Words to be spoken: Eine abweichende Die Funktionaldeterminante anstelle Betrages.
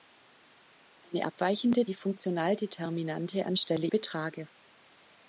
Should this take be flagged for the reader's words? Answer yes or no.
no